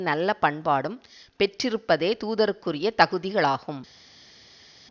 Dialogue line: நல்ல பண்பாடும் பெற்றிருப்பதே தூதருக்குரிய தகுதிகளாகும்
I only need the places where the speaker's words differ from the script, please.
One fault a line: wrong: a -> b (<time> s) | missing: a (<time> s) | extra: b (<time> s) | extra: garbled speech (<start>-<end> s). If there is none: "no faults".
no faults